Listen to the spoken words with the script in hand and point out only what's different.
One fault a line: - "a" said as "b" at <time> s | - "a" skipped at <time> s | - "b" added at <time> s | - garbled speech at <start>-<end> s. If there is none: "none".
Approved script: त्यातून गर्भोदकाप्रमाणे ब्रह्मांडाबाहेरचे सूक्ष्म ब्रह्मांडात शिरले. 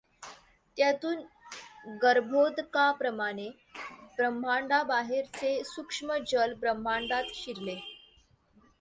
- "जल" added at 6.3 s